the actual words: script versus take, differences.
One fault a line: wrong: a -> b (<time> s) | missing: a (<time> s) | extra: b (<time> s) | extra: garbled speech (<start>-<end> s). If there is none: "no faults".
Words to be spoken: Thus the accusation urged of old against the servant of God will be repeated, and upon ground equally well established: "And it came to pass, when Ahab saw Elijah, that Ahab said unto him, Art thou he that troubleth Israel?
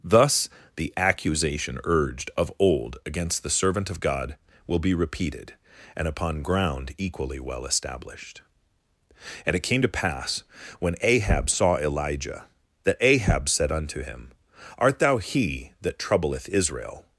no faults